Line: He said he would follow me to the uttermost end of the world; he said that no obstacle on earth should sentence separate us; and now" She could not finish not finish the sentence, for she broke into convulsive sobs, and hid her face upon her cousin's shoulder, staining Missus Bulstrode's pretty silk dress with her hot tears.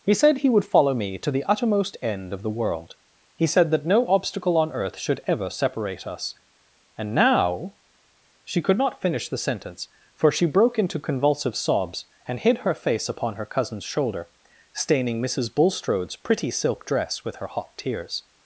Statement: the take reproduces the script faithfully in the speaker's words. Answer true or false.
false